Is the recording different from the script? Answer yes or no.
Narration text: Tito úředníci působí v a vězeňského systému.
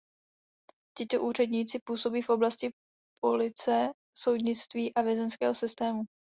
yes